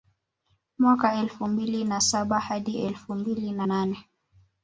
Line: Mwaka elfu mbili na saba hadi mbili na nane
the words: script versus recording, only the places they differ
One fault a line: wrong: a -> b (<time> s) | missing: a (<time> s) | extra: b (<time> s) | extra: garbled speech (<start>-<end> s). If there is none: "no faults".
extra: elfu (2.8 s)